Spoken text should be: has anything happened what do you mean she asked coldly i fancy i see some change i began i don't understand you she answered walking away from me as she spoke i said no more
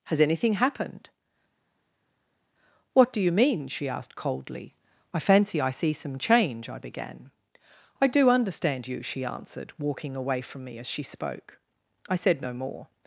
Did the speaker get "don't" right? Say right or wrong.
wrong